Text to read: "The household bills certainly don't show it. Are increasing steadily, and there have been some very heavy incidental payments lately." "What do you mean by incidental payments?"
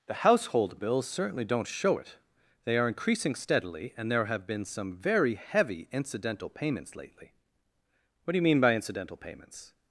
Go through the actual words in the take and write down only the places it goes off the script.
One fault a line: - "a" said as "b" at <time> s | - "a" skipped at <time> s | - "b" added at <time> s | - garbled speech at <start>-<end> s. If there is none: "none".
- "They" added at 2.6 s